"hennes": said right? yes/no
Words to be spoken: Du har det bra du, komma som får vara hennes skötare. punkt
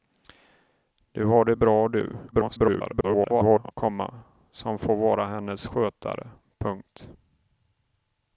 yes